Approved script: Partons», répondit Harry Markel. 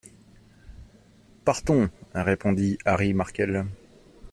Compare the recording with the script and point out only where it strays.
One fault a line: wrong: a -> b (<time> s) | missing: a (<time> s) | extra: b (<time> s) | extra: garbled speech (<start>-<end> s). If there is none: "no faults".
no faults